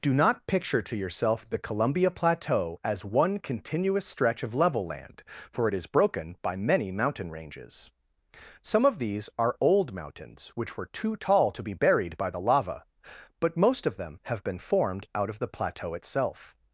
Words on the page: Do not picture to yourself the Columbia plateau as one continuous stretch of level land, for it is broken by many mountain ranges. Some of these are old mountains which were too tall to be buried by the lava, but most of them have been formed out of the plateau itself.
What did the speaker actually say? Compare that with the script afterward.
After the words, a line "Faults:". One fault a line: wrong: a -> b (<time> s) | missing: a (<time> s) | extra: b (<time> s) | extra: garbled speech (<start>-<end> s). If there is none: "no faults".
Do not picture to yourself the Columbia plateau as one continuous stretch of level land, for it is broken by many mountain ranges. Some of these are old mountains which were too tall to be buried by the lava, but most of them have been formed out of the plateau itself.
Faults:
no faults